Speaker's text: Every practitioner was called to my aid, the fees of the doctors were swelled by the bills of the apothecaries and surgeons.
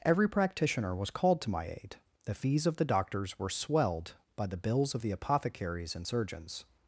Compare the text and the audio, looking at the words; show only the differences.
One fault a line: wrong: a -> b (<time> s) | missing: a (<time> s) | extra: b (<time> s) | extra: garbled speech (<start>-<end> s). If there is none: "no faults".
no faults